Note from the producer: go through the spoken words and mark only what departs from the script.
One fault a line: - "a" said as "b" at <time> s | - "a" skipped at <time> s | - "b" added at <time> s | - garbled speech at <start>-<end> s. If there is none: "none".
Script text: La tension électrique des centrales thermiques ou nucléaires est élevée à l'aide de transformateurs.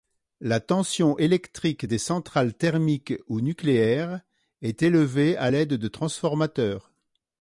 none